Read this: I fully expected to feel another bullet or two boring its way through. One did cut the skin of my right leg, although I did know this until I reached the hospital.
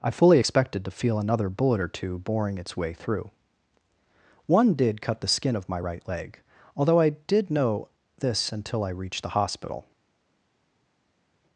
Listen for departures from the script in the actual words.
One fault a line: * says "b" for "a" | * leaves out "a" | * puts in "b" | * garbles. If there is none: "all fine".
all fine